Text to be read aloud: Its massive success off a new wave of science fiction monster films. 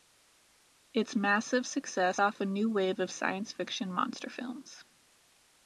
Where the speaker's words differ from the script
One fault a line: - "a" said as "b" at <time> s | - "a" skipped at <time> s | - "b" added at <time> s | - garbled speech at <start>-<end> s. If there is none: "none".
none